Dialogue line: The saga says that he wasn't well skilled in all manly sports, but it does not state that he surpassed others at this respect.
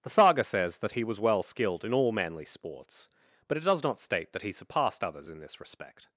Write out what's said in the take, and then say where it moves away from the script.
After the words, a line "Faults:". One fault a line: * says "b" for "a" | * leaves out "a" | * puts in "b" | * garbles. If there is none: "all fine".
The saga says that he was well skilled in all manly sports, but it does not state that he surpassed others in this respect.
Faults:
* says "was" for "wasn't"
* says "in" for "at"